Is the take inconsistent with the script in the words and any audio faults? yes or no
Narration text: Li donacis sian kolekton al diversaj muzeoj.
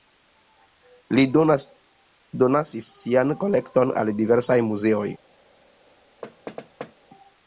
yes